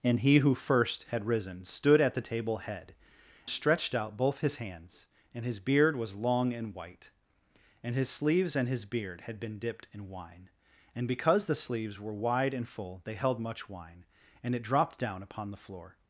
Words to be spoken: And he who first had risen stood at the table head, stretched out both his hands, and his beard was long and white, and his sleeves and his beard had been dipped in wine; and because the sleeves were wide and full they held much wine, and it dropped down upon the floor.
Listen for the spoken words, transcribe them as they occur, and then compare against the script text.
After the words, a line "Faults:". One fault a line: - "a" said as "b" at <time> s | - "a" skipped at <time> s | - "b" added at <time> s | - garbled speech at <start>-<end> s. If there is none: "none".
And he who first had risen stood at the table head, stretched out both his hands, and his beard was long and white, and his sleeves and his beard had been dipped in wine; and because the sleeves were wide and full they held much wine, and it dropped down upon the floor.
Faults:
none